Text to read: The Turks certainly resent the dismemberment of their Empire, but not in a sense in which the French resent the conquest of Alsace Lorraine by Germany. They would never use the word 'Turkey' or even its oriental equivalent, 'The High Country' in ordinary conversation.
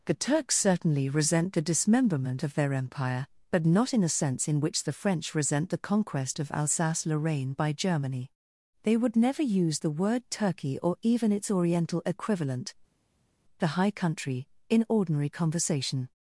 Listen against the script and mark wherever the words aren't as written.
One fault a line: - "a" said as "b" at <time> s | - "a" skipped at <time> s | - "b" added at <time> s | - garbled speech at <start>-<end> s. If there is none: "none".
none